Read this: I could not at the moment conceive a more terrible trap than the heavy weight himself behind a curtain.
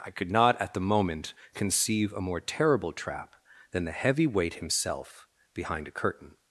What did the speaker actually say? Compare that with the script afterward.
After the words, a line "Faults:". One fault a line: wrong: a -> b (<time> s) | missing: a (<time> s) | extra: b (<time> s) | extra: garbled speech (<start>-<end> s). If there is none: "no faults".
I could not at the moment conceive a more terrible trap than the heavy weight himself behind a curtain.
Faults:
no faults